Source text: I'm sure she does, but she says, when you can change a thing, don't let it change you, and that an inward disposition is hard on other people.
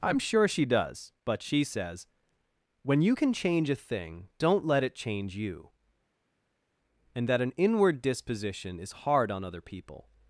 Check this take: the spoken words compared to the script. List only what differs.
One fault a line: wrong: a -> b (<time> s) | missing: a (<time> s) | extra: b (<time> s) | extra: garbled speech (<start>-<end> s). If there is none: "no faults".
no faults